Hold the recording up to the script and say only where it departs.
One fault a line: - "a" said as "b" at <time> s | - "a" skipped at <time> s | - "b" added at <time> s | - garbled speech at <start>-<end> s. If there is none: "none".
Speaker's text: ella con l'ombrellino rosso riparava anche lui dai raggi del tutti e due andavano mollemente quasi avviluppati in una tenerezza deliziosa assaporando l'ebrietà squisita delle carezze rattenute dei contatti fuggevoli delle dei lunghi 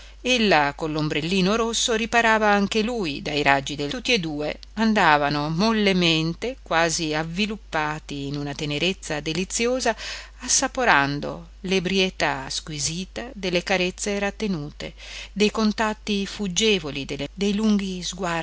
none